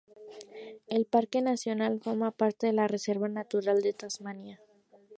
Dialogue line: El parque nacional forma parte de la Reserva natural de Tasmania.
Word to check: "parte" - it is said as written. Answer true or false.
true